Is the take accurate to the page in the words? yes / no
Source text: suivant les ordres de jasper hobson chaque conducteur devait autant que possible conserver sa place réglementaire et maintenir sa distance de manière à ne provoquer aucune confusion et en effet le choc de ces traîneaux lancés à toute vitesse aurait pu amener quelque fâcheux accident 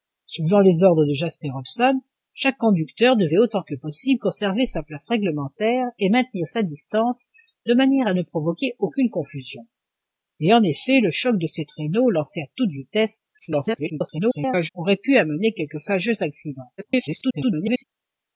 no